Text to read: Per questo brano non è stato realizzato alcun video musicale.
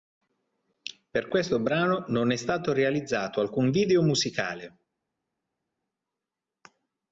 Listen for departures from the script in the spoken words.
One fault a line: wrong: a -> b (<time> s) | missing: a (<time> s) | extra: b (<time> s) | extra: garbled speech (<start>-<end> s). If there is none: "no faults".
no faults